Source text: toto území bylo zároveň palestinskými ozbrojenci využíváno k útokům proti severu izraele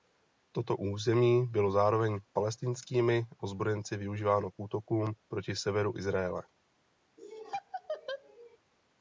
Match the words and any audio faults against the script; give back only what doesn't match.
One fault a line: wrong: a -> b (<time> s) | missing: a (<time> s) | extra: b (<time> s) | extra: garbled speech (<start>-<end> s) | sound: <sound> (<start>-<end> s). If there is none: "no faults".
sound: laugh (7.2-8.6 s)